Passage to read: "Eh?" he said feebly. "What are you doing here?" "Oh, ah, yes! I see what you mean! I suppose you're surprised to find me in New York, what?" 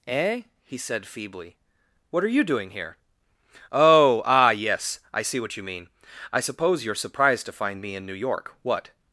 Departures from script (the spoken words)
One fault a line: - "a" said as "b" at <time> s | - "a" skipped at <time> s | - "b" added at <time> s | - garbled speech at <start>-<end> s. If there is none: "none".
none